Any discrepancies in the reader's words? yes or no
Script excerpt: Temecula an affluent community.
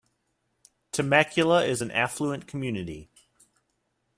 yes